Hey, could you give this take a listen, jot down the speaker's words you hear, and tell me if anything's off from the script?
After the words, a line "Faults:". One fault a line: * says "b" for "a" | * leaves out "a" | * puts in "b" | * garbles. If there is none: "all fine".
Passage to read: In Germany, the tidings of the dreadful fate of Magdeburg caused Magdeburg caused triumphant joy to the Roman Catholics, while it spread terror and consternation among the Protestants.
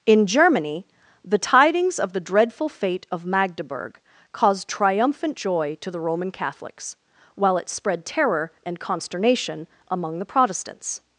In Germany, the tidings of the dreadful fate of Magdeburg caused triumphant joy to the Roman Catholics, while it spread terror and consternation among the Protestants.
Faults:
* leaves out "Magdeburg caused"